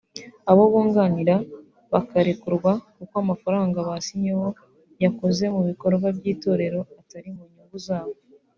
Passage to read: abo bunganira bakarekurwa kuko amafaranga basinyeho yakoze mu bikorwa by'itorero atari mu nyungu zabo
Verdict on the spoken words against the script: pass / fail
pass